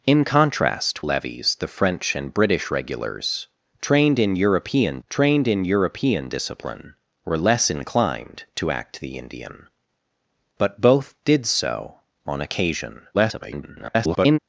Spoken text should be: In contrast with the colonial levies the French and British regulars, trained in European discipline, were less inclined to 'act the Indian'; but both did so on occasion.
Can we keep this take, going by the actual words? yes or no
no